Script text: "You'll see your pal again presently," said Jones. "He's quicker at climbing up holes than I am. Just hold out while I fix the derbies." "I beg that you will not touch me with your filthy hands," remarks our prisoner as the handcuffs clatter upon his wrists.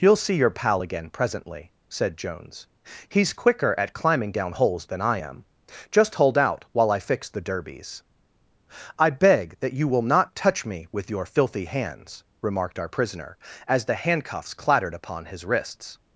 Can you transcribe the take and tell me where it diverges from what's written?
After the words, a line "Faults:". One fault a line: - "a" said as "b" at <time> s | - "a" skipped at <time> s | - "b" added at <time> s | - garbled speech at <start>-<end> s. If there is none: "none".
"You'll see your pal again presently," said Jones. "He's quicker at climbing down holes than I am. Just hold out while I fix the derbies." "I beg that you will not touch me with your filthy hands," remarked our prisoner as the handcuffs clattered upon his wrists.
Faults:
- "up" said as "down" at 4.3 s
- "remarks" said as "remarked" at 12.4 s
- "clatter" said as "clattered" at 14.5 s